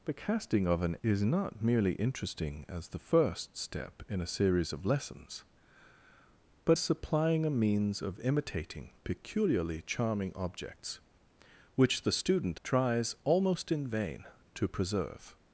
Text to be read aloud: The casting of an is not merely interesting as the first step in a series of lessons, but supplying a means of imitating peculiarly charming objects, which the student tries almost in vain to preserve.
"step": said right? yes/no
yes